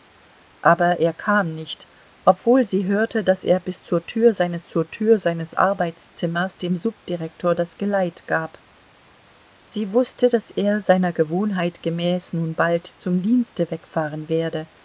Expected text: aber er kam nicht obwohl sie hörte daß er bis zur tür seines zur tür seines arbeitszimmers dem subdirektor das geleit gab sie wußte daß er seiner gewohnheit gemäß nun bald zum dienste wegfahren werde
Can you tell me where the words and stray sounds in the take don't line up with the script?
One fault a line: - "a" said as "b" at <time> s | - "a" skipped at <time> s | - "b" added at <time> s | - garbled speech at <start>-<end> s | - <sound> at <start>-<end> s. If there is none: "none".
none